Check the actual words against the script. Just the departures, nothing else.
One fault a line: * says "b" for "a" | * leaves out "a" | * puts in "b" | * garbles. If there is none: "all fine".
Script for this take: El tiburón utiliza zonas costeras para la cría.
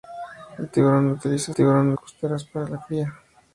* says "tiburón" for "zonas"